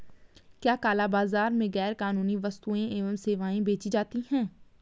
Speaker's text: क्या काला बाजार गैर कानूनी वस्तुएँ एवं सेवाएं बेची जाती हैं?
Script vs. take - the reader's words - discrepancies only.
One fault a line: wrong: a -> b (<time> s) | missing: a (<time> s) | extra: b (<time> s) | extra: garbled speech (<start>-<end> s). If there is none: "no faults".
extra: में (1.5 s)